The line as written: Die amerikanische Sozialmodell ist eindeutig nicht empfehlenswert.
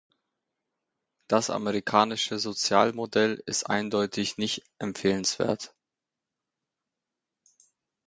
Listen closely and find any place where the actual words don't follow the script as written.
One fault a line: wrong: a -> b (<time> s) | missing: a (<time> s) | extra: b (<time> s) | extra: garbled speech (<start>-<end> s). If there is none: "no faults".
wrong: Die -> Das (1.3 s)